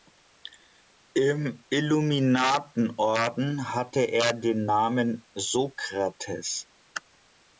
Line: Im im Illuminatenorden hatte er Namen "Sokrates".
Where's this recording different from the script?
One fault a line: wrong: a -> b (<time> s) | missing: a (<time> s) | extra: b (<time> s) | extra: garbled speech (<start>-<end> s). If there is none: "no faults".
missing: im (1.6 s)
extra: den (4.3 s)